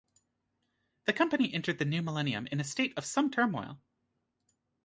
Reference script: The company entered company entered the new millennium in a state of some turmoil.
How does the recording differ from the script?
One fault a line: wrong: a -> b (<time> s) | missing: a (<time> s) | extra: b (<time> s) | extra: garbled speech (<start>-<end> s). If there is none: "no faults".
missing: company entered (1.8 s)